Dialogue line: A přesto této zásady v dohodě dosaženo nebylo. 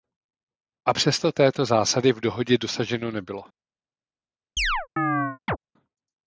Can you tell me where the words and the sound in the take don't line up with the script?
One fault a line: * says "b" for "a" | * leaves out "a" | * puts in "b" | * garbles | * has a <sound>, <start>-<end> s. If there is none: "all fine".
* has a chirp, 4.6-5.6 s